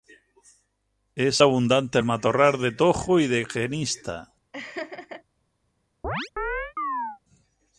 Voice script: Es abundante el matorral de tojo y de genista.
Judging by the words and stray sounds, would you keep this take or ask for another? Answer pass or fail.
fail